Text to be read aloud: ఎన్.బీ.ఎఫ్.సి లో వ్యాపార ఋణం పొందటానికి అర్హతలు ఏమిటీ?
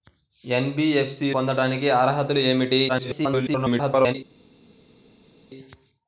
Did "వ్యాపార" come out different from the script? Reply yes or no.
yes